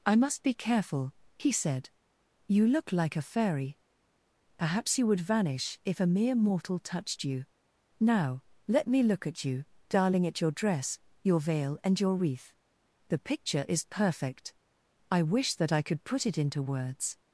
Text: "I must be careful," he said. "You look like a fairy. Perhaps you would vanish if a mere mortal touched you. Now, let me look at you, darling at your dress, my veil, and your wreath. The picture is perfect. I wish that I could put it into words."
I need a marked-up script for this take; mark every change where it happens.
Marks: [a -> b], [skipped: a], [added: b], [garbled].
"I must be careful," he said. "You look like a fairy. Perhaps you would vanish if a mere mortal touched you. Now, let me look at you, darling at your dress, [my -> your] veil, and your wreath. The picture is perfect. I wish that I could put it into words."